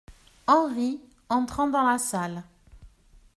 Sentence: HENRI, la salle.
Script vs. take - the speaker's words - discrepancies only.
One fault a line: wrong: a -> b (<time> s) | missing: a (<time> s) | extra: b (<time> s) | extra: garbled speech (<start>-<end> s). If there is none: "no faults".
extra: entrant dans (1.3 s)